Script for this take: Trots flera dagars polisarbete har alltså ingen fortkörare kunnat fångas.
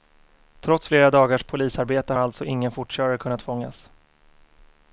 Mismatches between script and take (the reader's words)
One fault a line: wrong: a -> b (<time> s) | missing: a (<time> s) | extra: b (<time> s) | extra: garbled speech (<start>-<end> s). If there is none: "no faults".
no faults